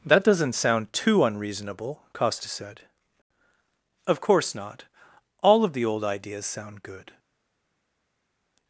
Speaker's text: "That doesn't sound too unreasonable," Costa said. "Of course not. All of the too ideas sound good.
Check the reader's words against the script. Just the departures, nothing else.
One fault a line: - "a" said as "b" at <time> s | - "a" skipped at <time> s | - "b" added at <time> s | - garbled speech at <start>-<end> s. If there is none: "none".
- "too" said as "old" at 5.8 s